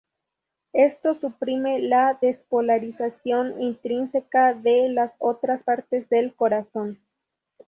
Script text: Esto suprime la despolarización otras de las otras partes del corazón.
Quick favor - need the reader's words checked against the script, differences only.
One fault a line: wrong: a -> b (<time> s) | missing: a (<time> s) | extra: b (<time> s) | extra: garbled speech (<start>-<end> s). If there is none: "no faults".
wrong: otras -> intrínseca (3.6 s)